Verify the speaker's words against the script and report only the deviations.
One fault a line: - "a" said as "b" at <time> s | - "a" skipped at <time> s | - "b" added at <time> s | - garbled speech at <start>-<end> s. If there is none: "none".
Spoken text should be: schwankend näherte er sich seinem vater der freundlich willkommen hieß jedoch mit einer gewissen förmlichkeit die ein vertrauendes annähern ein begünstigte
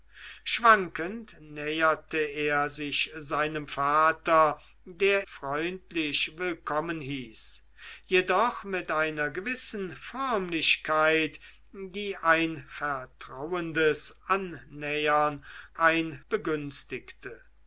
none